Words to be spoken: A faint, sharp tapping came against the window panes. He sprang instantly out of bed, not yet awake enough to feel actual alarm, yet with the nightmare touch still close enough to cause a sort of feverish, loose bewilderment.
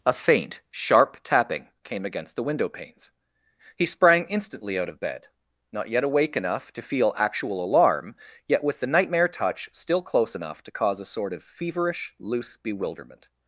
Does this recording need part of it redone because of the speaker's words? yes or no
no